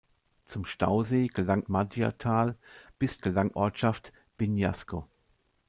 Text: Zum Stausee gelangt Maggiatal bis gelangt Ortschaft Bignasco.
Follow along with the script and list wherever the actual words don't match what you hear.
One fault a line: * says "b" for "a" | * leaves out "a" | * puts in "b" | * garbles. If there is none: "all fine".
all fine